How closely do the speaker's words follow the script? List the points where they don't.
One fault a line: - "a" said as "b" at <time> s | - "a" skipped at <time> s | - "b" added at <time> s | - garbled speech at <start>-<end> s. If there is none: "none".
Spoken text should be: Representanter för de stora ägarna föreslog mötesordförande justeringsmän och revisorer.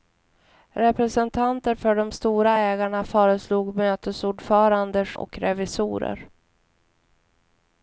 - "justeringsmän" skipped at 5.0 s